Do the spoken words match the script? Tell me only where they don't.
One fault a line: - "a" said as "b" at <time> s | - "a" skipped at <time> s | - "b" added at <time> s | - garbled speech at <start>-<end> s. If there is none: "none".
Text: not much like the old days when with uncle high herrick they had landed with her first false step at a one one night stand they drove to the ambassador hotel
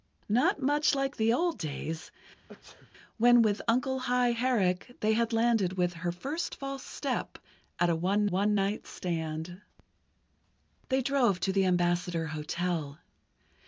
none